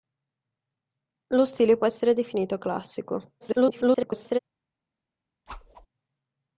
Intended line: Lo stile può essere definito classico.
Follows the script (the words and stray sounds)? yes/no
no